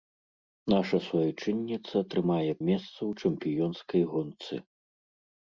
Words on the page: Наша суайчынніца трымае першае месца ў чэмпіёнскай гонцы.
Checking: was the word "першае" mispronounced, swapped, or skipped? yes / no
yes